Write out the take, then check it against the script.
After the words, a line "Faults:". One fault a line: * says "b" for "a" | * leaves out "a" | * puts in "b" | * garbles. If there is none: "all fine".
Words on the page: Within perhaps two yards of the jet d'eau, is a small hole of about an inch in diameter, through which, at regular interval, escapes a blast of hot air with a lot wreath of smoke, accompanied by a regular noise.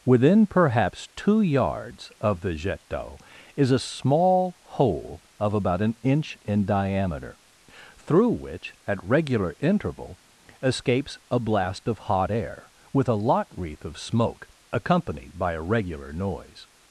Within perhaps two yards of the jet d'eau, is a small hole of about an inch in diameter, through which, at regular interval, escapes a blast of hot air with a lot wreath of smoke, accompanied by a regular noise.
Faults:
all fine